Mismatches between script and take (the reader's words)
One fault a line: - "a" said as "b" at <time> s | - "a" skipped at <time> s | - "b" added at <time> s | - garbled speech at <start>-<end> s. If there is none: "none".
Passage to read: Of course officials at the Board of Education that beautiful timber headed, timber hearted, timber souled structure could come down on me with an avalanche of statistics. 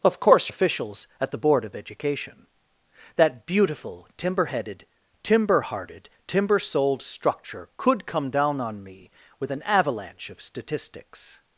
none